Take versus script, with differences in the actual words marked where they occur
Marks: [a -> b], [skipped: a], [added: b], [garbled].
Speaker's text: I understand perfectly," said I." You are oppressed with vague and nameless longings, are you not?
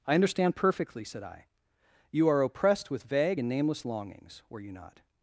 I understand perfectly," said I." You are oppressed with vague and nameless longings, [are -> were] you not?